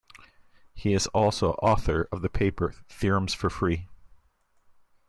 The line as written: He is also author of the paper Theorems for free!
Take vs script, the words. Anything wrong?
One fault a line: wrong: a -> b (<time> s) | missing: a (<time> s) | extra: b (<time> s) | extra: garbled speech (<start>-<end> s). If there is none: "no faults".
no faults